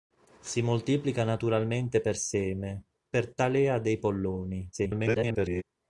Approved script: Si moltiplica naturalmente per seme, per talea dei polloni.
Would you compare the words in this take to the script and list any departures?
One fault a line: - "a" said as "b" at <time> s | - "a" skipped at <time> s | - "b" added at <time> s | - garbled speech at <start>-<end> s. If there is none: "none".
- garbled speech at 4.7-5.6 s